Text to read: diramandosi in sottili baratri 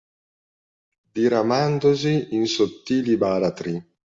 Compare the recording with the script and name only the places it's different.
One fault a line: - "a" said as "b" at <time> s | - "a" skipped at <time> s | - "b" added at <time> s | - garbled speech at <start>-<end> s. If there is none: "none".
none